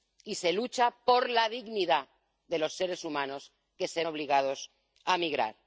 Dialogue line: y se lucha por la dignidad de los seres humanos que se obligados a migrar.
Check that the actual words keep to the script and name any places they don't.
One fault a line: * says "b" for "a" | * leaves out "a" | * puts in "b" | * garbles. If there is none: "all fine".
all fine